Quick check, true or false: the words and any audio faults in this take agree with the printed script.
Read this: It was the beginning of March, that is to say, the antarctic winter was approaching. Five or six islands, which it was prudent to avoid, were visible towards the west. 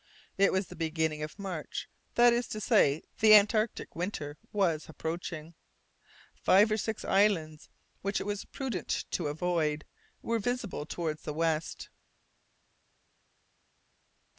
true